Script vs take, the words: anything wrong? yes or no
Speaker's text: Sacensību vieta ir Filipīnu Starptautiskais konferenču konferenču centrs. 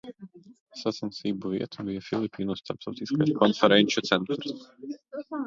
yes